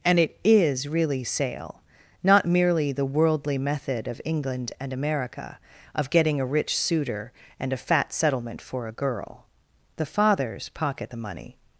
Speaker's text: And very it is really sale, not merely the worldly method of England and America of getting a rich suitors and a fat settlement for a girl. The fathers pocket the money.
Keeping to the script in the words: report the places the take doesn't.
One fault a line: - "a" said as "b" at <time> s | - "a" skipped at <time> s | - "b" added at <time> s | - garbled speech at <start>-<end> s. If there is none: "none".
- "very" skipped at 0.2 s
- "suitors" said as "suitor" at 6.8 s